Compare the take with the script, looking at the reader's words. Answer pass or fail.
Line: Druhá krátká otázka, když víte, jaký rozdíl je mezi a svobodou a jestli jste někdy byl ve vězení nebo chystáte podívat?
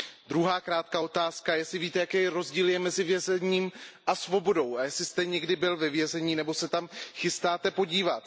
fail